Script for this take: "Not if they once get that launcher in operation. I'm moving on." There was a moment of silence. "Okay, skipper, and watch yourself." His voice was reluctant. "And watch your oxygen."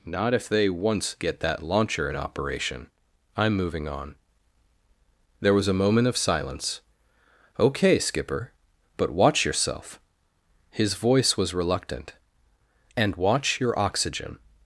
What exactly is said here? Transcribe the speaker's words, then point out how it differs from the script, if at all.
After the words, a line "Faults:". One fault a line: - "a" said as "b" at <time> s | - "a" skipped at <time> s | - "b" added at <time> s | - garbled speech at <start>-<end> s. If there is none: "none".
"Not if they once get that launcher in operation. I'm moving on." There was a moment of silence. "Okay, skipper, but watch yourself." His voice was reluctant. "And watch your oxygen."
Faults:
- "and" said as "but" at 9.0 s